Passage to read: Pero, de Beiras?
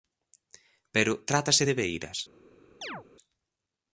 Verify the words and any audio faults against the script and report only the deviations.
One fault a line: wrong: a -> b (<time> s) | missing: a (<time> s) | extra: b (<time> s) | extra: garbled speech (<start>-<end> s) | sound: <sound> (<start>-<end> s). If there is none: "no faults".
extra: trátase (1.3 s)
sound: chirp (2.8-3.0 s)